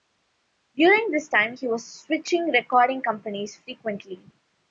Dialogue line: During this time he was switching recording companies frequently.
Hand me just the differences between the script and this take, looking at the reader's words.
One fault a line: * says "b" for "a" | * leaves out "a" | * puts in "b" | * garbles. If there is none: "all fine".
all fine